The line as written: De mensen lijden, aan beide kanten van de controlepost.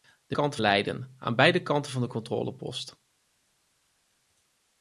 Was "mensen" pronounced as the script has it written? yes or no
no